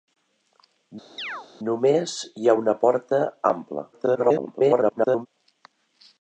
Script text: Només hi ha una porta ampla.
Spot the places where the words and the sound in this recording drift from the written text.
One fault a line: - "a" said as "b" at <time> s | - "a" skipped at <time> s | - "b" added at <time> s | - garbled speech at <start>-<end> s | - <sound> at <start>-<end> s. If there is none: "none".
- chirp at 1.2-1.5 s
- garbled speech at 3.9-5.3 s